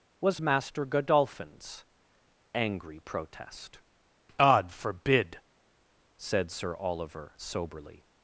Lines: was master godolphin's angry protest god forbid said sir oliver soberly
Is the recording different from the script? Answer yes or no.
no